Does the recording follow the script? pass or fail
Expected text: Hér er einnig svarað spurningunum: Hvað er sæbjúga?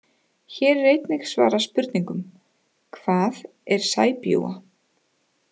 pass